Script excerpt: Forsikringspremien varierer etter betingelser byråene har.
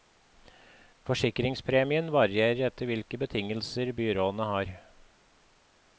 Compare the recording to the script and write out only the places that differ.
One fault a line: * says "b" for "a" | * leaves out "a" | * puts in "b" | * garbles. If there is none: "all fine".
* puts in "hvilke"